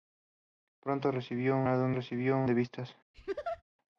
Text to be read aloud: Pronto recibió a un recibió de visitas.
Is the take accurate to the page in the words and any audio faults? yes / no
no